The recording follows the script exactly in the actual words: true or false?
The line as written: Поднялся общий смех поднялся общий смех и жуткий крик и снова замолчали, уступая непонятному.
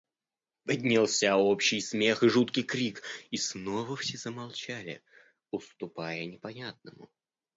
false